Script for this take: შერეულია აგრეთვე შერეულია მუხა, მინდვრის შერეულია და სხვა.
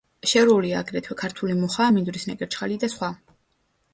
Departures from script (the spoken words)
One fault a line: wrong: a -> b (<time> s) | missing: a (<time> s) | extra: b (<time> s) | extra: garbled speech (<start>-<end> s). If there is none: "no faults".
wrong: შერეულია -> ქართული (1.2 s)
wrong: შერეულია -> ნეკერჩხალი (2.3 s)